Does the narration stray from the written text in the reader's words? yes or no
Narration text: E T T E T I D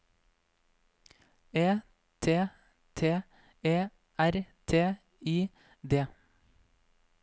yes